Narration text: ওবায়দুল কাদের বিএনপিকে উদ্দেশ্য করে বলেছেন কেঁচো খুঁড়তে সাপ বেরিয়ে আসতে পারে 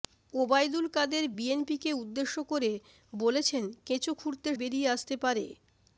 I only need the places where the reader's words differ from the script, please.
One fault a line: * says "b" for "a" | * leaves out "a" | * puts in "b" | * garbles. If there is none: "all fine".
* leaves out "সাপ"